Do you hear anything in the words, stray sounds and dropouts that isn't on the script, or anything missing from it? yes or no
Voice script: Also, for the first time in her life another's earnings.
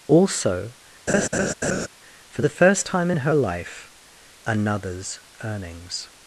yes